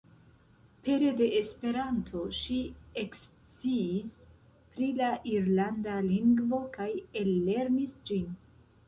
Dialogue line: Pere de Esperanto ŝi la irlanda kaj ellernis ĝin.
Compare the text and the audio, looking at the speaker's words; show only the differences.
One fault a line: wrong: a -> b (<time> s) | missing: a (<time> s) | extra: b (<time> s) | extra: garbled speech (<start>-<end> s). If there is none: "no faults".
extra: eksciis pri (3.0 s)
extra: lingvo (6.1 s)